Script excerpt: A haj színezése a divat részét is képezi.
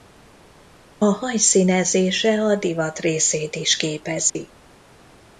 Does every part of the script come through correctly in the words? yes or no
yes